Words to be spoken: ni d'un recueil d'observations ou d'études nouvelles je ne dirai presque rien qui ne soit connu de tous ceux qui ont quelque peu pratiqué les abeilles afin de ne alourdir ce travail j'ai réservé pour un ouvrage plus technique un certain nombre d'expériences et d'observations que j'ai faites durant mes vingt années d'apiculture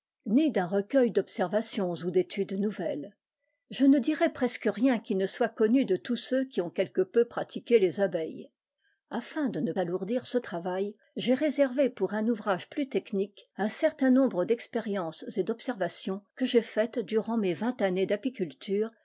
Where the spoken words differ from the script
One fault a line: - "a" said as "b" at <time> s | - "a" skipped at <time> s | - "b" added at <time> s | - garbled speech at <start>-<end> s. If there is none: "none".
none